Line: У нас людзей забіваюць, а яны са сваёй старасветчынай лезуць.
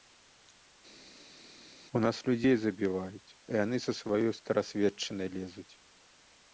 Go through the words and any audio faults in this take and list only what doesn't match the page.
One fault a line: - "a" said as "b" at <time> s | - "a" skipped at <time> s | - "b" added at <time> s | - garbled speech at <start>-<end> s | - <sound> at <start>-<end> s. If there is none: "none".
none